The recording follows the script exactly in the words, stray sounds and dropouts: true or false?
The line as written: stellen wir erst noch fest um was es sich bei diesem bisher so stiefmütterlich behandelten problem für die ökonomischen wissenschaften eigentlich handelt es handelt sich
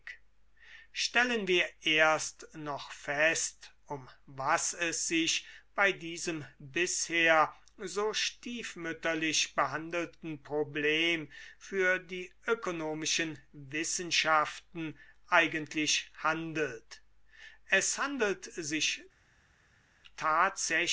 true